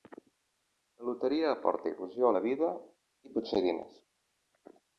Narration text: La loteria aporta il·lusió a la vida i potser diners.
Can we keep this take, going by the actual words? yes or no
yes